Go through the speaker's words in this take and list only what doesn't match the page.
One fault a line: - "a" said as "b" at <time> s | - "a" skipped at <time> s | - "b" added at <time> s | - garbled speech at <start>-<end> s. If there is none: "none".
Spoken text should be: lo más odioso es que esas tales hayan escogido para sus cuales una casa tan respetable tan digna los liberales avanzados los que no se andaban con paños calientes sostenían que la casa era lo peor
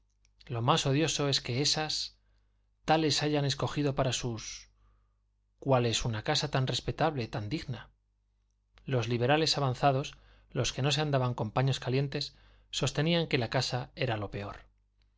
none